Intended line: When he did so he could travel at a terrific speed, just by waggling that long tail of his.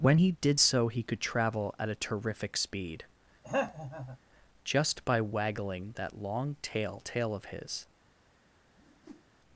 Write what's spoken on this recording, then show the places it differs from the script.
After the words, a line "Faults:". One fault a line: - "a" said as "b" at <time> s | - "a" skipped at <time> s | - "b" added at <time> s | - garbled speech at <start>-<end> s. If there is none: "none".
When he did so he could travel at a terrific speed, just by waggling that long tail tail of his.
Faults:
- "tail" added at 7.0 s